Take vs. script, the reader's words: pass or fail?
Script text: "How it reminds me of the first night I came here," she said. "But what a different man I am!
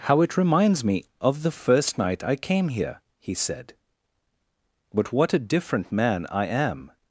fail